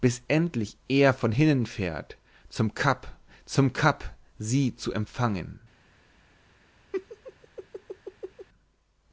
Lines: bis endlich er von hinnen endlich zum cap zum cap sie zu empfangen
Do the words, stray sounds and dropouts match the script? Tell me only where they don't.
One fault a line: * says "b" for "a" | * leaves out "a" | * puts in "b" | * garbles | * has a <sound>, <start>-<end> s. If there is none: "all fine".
* says "fährt" for "endlich"
* has a laugh, 6.9-8.5 s